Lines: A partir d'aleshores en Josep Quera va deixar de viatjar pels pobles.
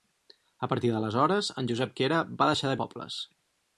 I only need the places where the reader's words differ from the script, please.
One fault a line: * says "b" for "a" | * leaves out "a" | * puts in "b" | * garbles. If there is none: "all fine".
* leaves out "viatjar pels"